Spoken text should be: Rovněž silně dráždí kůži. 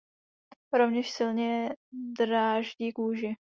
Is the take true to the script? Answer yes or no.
yes